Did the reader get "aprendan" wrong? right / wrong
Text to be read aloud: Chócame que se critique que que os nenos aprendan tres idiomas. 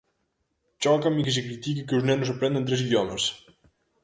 right